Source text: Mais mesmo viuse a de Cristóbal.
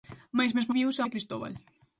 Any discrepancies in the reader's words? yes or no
no